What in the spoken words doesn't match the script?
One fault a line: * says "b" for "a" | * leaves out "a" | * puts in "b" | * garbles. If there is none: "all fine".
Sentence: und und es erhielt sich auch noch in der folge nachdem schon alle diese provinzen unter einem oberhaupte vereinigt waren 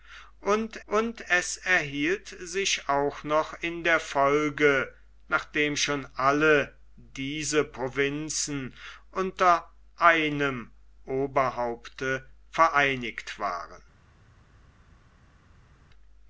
all fine